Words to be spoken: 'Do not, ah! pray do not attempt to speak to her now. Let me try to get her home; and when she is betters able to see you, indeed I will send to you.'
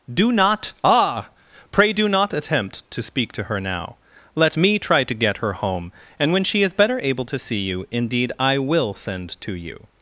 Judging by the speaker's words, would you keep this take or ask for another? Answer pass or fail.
fail